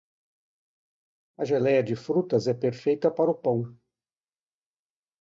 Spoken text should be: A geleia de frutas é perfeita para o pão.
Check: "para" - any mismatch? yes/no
no